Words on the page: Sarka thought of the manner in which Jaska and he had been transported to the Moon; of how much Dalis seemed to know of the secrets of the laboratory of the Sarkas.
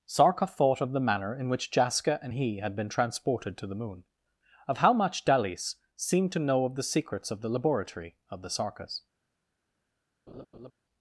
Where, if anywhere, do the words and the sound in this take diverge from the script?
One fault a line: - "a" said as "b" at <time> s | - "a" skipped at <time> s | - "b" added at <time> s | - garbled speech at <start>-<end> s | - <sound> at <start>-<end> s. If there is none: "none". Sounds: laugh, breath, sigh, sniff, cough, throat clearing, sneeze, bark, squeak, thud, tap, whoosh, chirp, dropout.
- laugh at 10.3-10.7 s